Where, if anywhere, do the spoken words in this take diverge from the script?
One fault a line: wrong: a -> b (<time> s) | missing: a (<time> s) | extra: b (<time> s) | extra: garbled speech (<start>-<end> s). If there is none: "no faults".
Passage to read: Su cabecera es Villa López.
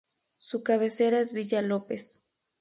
no faults